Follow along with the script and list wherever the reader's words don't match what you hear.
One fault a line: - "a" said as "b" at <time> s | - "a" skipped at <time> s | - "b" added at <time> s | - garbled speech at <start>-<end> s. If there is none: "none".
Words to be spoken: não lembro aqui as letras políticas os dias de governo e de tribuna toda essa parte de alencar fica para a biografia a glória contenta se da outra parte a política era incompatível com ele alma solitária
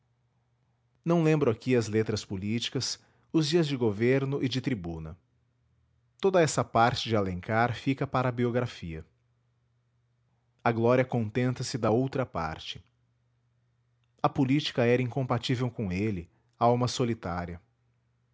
none